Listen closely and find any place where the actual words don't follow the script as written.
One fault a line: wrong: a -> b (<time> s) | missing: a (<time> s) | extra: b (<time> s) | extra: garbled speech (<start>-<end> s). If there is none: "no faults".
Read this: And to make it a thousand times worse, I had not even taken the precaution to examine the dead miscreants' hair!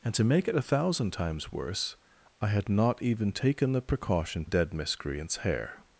missing: to examine the (4.5 s)